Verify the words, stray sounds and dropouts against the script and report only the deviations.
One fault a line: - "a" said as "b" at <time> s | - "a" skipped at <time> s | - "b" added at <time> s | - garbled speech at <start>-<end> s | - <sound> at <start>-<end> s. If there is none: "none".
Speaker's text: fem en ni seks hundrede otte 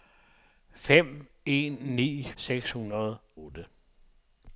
none